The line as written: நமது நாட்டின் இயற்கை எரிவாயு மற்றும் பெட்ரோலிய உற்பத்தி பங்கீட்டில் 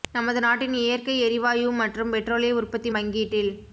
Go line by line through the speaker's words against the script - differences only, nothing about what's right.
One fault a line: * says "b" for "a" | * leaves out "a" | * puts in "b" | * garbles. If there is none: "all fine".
all fine